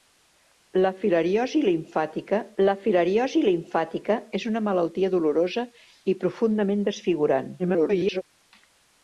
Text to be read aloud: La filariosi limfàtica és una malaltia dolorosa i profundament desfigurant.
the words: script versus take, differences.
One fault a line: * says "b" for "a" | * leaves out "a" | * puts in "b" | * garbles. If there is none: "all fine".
* puts in "la filariosi limfàtica"
* garbles